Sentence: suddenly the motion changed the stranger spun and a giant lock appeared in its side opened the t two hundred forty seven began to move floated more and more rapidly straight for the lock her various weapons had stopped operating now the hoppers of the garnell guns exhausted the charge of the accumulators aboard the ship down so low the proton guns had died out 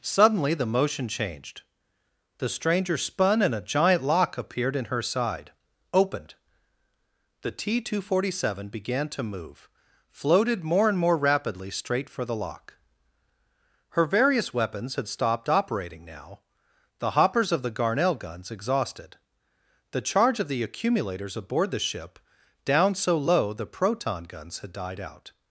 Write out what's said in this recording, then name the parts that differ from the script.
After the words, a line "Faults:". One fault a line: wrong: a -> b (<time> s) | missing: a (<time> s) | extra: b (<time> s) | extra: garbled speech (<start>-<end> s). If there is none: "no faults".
suddenly the motion changed the stranger spun and a giant lock appeared in her side opened the t two hundred forty seven began to move floated more and more rapidly straight for the lock her various weapons had stopped operating now the hoppers of the garnell guns exhausted the charge of the accumulators aboard the ship down so low the proton guns had died out
Faults:
wrong: its -> her (4.8 s)